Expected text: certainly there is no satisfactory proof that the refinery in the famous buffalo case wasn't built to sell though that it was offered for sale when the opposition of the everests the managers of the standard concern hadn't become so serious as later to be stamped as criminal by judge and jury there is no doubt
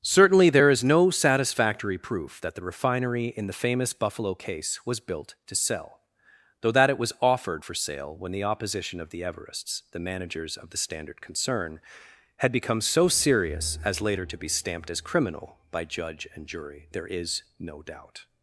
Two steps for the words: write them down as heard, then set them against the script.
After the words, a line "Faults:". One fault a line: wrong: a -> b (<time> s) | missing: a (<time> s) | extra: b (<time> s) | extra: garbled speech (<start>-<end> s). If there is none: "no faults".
certainly there is no satisfactory proof that the refinery in the famous buffalo case was built to sell though that it was offered for sale when the opposition of the everests the managers of the standard concern had become so serious as later to be stamped as criminal by judge and jury there is no doubt
Faults:
wrong: wasn't -> was (4.8 s)
wrong: hadn't -> had (12.4 s)